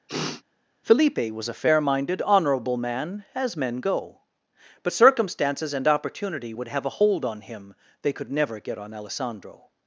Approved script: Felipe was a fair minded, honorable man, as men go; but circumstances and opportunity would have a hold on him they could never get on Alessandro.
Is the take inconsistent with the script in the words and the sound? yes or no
yes